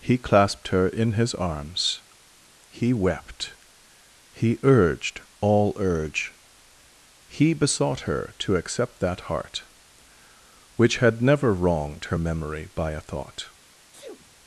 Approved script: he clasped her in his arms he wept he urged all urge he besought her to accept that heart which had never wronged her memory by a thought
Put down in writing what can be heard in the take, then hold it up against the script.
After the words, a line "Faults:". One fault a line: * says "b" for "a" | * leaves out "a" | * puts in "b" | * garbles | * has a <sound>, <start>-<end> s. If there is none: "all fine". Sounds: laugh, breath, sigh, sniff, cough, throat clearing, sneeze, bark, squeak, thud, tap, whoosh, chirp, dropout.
he clasped her in his arms he wept he urged all urge he besought her to accept that heart which had never wronged her memory by a thought
Faults:
* has a sneeze, 13.9-14.4 s